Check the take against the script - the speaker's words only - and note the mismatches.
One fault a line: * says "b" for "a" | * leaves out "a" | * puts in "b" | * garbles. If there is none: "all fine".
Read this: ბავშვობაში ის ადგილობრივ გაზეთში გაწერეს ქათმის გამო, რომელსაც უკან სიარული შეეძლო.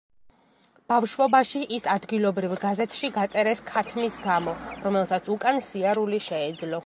all fine